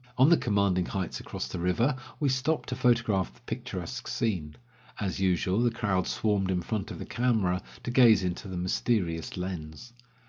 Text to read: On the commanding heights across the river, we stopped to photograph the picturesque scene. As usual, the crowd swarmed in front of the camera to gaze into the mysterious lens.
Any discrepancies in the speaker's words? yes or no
no